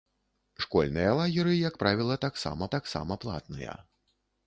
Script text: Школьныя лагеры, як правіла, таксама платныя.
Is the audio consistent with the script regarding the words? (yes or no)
no